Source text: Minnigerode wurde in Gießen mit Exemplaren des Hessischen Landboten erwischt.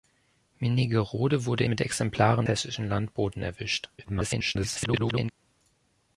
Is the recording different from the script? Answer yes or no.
yes